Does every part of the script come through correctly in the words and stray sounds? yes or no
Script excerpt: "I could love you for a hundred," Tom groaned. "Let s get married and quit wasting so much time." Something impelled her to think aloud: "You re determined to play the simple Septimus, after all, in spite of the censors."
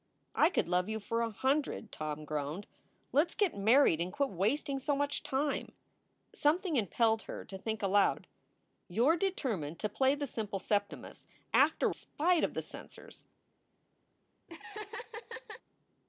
no